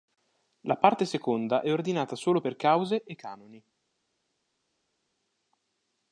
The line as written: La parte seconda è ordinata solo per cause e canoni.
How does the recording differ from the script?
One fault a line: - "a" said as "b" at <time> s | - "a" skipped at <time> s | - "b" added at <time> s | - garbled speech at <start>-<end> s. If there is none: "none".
none